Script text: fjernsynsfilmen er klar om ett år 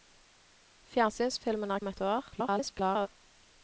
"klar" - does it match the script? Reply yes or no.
no